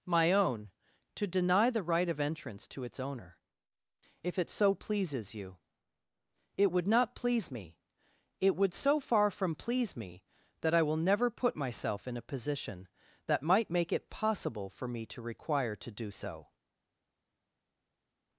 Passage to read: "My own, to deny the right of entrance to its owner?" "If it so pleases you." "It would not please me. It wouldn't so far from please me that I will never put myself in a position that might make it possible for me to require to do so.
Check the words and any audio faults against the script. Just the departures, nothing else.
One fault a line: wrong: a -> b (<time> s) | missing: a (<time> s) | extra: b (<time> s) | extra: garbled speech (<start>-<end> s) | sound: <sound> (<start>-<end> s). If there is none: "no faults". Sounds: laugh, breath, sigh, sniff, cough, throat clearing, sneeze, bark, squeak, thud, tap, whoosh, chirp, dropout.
wrong: wouldn't -> would (8.6 s)